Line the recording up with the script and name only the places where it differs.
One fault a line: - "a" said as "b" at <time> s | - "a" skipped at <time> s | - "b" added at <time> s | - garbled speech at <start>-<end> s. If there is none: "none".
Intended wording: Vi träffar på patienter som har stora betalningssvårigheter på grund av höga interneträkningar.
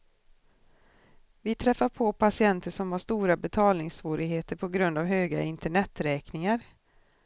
none